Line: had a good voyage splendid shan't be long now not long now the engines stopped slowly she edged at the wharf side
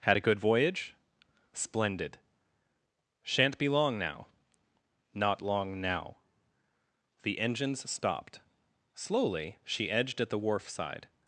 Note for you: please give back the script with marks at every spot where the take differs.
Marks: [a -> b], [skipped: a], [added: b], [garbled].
had a good voyage splendid shan't be long now not long now the engines stopped slowly she edged at the wharf side